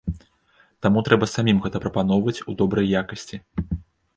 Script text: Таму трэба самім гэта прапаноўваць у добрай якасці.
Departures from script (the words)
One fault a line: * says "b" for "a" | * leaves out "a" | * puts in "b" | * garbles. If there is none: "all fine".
all fine